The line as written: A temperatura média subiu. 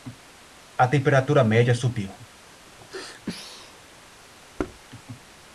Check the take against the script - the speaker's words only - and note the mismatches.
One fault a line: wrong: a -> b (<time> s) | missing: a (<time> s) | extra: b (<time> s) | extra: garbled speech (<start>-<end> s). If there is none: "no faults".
no faults